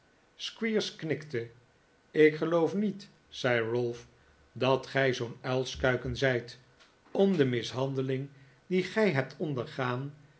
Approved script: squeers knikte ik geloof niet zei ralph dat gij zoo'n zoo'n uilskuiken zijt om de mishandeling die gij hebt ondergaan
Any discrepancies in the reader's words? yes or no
yes